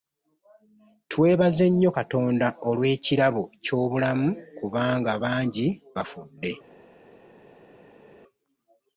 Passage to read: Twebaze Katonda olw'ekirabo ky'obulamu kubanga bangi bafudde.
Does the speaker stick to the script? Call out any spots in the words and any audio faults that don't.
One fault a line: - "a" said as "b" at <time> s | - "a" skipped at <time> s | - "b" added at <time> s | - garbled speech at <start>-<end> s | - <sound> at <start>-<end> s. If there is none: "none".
- "nnyo" added at 1.7 s